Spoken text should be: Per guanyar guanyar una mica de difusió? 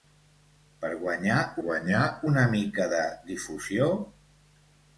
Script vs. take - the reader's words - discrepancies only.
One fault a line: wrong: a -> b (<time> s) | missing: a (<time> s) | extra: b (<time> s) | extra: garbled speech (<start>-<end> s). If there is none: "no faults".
no faults